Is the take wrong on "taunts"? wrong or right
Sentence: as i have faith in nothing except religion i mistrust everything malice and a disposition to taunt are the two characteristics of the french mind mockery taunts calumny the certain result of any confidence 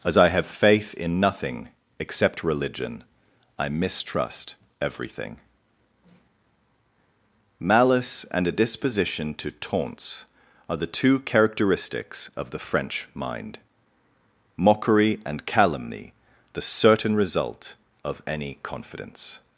wrong